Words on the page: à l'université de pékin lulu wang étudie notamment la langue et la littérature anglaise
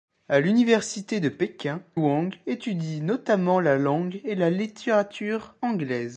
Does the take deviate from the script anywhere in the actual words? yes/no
yes